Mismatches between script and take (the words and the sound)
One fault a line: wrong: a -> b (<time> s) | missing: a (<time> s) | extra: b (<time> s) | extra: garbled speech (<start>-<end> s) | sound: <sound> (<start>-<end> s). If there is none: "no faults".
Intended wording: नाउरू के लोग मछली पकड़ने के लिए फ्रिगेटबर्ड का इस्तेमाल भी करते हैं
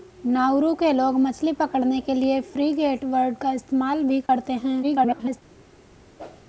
sound: dropout (4.3-4.3 s)
extra: garbled speech (4.8-5.4 s)
sound: whoosh (6.2-6.5 s)